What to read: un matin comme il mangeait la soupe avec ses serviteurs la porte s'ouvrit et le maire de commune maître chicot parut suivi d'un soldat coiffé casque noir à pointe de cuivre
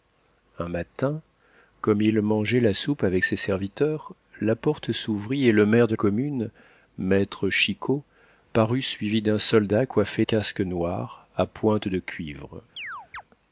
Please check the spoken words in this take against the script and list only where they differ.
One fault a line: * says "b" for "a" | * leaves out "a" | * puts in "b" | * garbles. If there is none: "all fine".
all fine